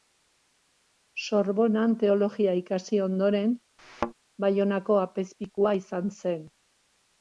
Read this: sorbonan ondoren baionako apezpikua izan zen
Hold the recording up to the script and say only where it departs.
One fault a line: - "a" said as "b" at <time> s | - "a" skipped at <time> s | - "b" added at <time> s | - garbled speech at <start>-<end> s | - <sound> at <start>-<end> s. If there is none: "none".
- "teologia ikasi" added at 2.0 s
- thud at 3.8-4.1 s